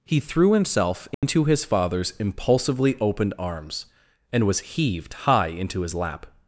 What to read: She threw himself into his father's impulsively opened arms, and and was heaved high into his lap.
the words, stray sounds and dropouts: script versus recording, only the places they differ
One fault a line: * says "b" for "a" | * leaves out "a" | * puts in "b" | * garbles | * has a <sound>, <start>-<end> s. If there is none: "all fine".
* says "He" for "She"
* has a dropout, 1.1-1.2 s
* leaves out "and"